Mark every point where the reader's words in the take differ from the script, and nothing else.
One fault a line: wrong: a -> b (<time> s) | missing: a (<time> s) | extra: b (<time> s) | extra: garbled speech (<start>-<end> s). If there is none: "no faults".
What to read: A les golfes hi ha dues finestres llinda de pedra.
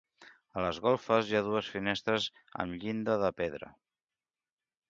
extra: amb (2.6 s)